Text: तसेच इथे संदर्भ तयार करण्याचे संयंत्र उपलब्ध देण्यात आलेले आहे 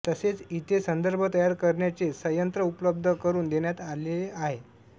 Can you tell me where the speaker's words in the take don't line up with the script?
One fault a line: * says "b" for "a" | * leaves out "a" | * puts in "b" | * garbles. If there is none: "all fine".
* puts in "करून"